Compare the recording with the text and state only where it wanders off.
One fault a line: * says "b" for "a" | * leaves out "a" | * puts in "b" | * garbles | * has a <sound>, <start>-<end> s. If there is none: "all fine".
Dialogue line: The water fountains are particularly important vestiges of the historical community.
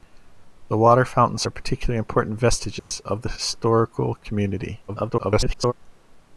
* has a dropout, 2.8-2.9 s
* garbles